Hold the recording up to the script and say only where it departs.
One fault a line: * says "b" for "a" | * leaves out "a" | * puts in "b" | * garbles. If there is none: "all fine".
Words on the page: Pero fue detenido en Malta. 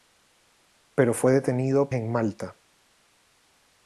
all fine